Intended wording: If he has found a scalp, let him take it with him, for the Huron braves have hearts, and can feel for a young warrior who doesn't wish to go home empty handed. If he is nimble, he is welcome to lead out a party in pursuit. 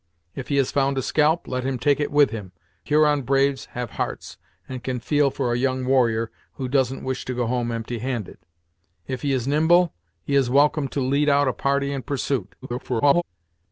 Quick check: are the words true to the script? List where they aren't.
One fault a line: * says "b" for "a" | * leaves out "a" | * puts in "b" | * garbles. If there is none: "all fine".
* leaves out "for the"
* garbles